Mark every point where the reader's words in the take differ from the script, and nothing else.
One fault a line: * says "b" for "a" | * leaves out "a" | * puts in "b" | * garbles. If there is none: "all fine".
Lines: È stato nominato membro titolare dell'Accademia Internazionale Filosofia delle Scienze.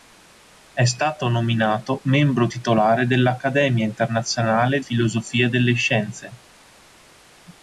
all fine